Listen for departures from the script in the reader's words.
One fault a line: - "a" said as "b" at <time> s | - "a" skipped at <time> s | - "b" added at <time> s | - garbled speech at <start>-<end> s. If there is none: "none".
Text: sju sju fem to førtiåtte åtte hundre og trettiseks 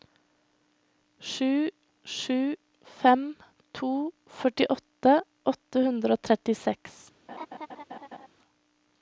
none